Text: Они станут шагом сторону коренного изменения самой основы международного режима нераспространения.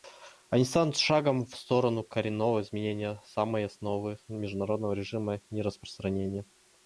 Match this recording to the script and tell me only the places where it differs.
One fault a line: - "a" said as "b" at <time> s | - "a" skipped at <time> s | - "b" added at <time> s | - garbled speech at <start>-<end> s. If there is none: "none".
- "в" added at 1.4 s